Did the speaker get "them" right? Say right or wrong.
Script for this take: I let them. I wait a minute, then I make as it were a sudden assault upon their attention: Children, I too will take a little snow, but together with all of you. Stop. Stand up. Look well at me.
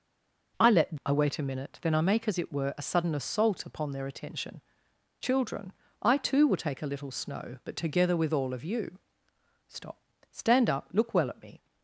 wrong